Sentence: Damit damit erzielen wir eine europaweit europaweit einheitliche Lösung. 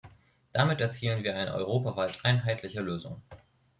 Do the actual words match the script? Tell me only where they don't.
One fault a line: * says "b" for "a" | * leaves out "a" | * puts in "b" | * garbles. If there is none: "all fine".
* leaves out "damit"
* leaves out "europaweit"